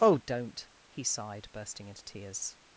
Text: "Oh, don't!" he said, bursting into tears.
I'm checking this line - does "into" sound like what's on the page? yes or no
yes